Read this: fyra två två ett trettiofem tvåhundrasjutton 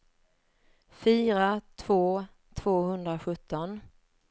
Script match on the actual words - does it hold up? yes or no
no